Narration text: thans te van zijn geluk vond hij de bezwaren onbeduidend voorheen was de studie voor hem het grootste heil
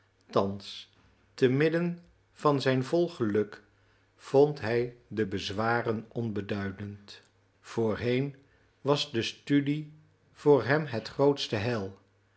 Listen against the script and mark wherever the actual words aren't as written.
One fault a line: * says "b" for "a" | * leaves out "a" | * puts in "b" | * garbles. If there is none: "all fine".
* puts in "midden"
* puts in "vol"